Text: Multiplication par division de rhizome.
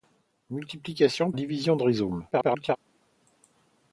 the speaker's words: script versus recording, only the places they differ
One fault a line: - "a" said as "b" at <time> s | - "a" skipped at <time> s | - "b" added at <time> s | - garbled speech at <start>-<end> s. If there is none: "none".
- "par" skipped at 1.3 s
- garbled speech at 2.3-2.8 s